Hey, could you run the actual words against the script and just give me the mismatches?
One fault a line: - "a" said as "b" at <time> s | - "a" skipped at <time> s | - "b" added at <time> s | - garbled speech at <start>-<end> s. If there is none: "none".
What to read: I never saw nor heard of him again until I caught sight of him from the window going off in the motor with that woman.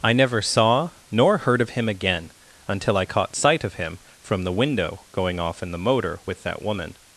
none